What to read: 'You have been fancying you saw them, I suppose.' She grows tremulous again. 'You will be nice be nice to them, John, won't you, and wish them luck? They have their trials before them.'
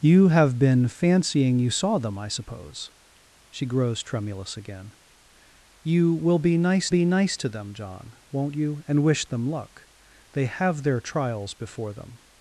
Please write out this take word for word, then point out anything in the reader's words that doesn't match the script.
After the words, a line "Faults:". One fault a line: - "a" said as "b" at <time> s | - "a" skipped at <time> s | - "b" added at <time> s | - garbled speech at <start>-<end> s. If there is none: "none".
'You have been fancying you saw them, I suppose.' She grows tremulous again. 'You will be nice be nice to them, John, won't you, and wish them luck? They have their trials before them.'
Faults:
none